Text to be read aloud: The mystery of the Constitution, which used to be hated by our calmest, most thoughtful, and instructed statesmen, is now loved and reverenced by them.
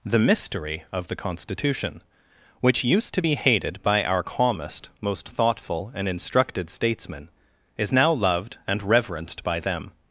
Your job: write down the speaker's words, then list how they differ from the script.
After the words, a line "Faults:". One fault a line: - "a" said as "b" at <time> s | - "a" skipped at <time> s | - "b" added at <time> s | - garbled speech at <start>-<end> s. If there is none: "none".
The mystery of the Constitution, which used to be hated by our calmest, most thoughtful, and instructed statesmen, is now loved and reverenced by them.
Faults:
none